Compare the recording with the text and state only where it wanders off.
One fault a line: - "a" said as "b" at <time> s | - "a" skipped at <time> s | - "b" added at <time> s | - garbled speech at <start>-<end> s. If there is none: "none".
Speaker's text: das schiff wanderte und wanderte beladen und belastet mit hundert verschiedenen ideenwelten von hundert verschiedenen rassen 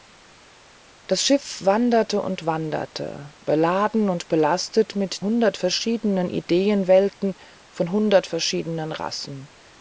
none